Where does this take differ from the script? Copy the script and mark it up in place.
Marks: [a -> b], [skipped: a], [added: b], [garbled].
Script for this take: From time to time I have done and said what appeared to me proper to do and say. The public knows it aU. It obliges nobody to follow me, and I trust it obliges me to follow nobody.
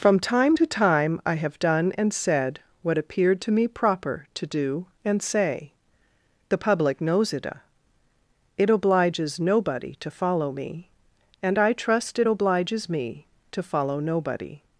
From time to time I have done and said what appeared to me proper to do and say. The public knows it [skipped: aU.] It obliges nobody to follow me, and I trust it obliges me to follow nobody.